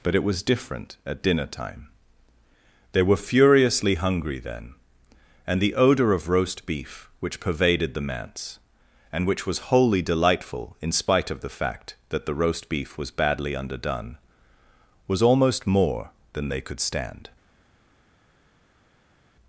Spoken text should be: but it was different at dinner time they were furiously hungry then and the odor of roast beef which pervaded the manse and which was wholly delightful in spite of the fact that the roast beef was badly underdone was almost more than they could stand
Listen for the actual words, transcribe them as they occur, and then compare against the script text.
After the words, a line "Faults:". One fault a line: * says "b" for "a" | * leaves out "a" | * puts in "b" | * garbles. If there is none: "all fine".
but it was different at dinner time they were furiously hungry then and the odor of roast beef which pervaded the manse and which was wholly delightful in spite of the fact that the roast beef was badly underdone was almost more than they could stand
Faults:
all fine